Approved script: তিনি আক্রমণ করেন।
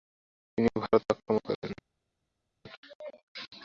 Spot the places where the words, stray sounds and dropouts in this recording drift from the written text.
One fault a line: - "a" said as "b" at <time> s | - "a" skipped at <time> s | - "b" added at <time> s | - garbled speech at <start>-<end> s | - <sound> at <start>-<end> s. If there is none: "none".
- "ভারত" added at 0.8 s